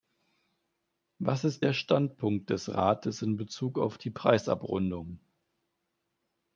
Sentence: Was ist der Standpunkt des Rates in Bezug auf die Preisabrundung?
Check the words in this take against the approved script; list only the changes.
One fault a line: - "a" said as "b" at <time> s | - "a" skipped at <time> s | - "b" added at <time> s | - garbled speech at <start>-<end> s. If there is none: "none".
none